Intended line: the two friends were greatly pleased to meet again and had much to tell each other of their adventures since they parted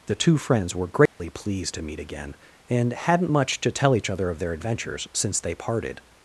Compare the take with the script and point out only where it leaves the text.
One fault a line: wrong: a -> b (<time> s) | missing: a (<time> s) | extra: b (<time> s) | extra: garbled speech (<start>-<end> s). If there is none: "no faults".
wrong: had -> hadn't (2.9 s)